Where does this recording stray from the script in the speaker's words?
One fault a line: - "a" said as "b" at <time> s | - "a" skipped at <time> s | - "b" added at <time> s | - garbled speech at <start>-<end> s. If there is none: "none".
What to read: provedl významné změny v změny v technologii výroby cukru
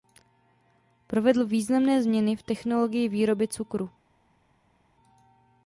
- "změny v" skipped at 2.4 s